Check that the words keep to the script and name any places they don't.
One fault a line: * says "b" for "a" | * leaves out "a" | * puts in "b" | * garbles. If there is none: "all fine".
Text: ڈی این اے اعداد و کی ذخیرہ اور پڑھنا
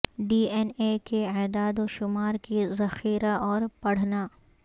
* puts in "کے"
* puts in "شمار"